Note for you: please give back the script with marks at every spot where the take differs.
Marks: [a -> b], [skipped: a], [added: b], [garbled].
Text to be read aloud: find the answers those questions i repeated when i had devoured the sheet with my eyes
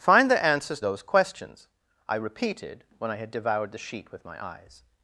find the answers those questions i repeated when i had devoured the sheet with my eyes